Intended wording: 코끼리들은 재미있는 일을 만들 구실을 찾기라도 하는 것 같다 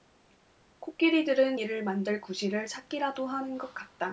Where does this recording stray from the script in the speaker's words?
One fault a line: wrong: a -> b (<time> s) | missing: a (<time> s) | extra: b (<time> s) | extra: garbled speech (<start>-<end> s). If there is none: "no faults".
missing: 재미있는 (1.6 s)